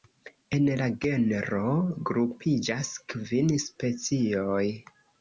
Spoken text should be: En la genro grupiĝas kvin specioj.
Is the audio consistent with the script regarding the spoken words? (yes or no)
yes